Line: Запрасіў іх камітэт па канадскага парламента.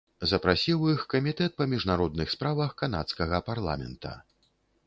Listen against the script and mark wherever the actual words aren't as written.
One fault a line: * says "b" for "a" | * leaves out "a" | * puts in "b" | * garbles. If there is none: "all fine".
* puts in "міжнародных справах"